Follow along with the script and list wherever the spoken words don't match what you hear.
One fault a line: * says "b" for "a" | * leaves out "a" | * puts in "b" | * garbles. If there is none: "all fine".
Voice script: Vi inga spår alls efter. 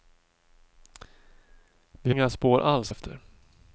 all fine